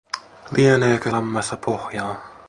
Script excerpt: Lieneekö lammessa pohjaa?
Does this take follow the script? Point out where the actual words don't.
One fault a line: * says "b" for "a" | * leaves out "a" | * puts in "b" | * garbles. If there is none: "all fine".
all fine